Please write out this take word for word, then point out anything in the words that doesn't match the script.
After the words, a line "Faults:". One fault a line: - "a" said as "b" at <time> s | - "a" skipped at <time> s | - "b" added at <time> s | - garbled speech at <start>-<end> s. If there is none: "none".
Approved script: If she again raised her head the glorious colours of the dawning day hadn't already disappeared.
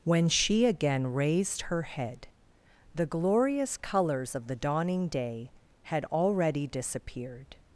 When she again raised her head the glorious colours of the dawning day had already disappeared.
Faults:
- "If" said as "When" at 0.0 s
- "hadn't" said as "had" at 5.8 s